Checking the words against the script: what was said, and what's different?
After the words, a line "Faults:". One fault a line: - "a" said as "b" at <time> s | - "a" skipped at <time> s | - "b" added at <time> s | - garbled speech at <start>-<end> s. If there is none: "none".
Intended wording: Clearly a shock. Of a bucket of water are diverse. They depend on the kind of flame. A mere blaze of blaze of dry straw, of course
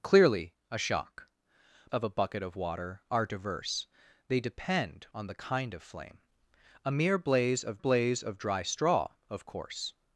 Clearly a shock. Of a bucket of water are diverse. They depend on the kind of flame. A mere blaze of blaze of dry straw, of course
Faults:
none